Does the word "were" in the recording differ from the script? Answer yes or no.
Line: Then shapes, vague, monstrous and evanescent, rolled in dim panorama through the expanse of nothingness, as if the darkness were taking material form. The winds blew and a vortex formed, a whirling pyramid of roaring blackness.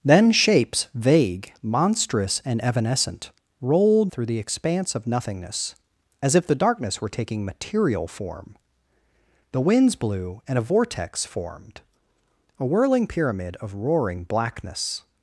no